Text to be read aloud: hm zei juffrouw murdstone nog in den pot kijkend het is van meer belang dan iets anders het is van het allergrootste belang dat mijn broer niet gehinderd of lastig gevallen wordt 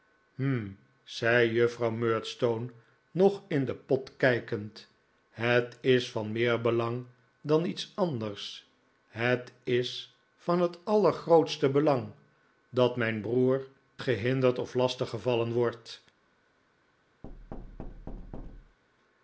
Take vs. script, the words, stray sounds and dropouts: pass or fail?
fail